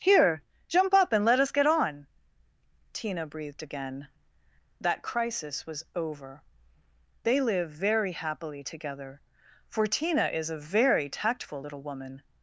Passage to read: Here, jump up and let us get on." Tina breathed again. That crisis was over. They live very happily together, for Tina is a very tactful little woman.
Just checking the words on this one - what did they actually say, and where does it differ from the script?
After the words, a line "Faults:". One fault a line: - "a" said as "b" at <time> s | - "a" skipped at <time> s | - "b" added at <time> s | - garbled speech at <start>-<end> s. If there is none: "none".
Here, jump up and let us get on." Tina breathed again. That crisis was over. They live very happily together, for Tina is a very tactful little woman.
Faults:
none